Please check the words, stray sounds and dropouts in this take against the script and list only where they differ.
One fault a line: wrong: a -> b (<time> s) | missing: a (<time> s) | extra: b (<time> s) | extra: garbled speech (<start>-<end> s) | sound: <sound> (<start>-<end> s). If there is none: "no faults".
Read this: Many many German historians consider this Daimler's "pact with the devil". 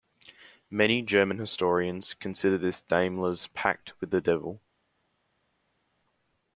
missing: many (1.0 s)